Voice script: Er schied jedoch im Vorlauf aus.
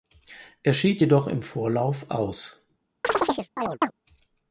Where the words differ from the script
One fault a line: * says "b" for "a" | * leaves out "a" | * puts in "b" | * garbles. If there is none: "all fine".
all fine